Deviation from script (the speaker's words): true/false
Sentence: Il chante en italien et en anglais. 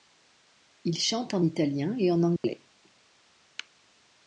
false